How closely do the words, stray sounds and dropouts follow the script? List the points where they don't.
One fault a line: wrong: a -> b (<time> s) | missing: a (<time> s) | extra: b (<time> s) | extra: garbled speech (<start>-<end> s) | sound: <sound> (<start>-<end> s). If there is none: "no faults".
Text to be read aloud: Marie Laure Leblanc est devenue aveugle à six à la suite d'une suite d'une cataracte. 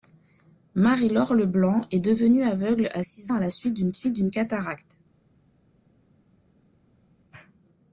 no faults